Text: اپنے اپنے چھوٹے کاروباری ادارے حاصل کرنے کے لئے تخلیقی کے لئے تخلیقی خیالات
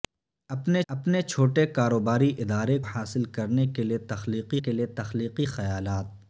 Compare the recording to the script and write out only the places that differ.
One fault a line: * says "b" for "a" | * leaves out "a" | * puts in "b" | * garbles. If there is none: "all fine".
all fine